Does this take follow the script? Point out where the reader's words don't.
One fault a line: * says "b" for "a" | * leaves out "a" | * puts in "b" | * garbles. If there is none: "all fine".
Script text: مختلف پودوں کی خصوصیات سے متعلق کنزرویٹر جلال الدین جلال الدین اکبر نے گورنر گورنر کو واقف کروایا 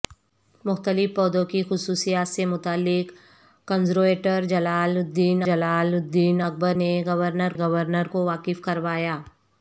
all fine